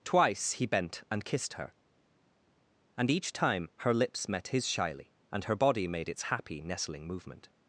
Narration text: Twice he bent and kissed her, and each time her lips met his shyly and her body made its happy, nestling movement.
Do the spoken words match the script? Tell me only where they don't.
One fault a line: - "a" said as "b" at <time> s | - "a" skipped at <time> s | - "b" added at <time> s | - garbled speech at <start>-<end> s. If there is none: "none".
none